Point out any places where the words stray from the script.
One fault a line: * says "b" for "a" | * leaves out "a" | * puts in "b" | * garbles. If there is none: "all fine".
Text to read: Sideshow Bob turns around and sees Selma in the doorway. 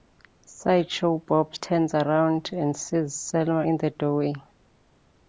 all fine